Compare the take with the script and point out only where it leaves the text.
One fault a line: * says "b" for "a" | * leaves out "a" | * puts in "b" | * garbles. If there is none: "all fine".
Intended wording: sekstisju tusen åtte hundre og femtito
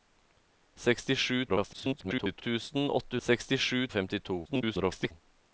* garbles
* says "sekstisju" for "hundre"
* garbles